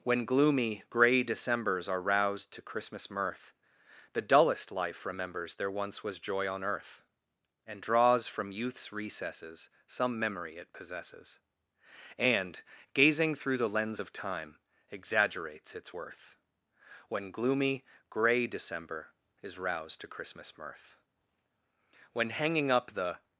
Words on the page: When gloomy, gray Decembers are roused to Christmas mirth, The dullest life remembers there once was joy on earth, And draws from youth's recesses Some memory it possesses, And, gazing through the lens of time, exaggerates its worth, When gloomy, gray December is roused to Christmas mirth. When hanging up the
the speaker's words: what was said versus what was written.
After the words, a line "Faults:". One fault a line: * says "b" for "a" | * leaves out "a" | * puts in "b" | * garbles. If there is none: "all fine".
When gloomy, gray Decembers are roused to Christmas mirth, The dullest life remembers there once was joy on earth, And draws from youth's recesses Some memory it possesses, And, gazing through the lens of time, exaggerates its worth, When gloomy, gray December is roused to Christmas mirth. When hanging up the
Faults:
all fine